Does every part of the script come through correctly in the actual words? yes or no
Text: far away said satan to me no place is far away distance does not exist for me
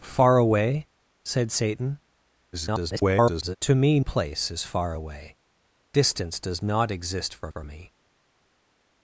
no